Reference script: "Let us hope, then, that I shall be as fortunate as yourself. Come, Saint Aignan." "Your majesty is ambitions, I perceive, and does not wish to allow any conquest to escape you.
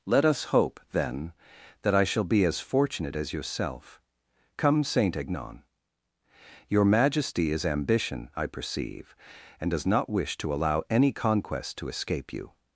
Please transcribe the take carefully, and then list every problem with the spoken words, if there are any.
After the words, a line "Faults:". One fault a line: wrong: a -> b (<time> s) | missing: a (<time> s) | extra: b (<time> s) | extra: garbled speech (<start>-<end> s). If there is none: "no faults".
"Let us hope, then, that I shall be as fortunate as yourself. Come, Saint Aignan." "Your majesty is ambition, I perceive, and does not wish to allow any conquest to escape you.
Faults:
wrong: ambitions -> ambition (7.7 s)